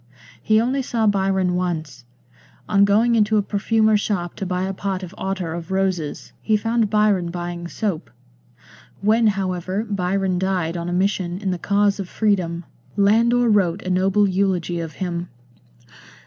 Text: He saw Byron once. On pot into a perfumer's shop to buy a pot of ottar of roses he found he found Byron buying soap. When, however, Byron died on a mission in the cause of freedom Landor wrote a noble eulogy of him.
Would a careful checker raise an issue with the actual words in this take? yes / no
yes